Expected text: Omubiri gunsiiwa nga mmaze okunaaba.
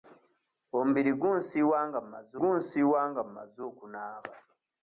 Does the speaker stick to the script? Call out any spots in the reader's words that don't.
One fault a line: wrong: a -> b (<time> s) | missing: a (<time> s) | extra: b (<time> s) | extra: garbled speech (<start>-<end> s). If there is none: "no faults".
extra: gunsiiwa nga mmaze (2.4 s)